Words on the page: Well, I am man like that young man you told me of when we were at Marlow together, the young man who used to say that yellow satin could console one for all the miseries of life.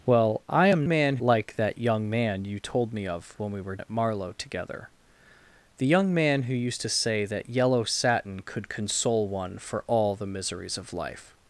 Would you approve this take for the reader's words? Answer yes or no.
yes